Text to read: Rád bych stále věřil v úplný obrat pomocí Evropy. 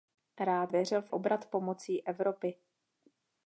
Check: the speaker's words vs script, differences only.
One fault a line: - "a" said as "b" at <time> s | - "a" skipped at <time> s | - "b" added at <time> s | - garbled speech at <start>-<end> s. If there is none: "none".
- "bych stále" skipped at 0.7 s
- "úplný" skipped at 1.1 s